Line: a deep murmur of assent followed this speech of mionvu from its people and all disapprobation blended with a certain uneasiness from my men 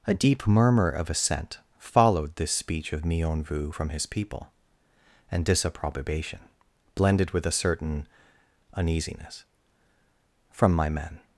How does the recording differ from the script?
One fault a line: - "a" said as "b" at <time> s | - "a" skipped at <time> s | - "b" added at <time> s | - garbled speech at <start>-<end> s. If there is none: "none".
- "its" said as "his" at 3.9 s
- "all" skipped at 5.4 s